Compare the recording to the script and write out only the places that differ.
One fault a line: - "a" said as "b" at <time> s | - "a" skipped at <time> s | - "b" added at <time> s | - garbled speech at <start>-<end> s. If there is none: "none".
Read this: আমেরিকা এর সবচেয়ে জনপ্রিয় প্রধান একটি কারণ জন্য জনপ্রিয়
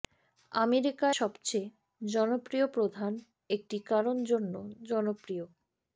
- "এর" skipped at 1.1 s